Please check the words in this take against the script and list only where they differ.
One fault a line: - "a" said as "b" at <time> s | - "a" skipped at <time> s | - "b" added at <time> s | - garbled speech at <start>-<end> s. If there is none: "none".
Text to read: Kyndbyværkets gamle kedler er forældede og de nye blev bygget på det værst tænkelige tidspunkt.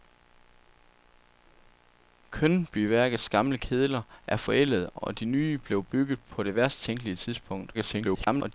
- garbled speech at 7.7-8.5 s